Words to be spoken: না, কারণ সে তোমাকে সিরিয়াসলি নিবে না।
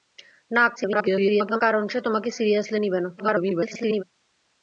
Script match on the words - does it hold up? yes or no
no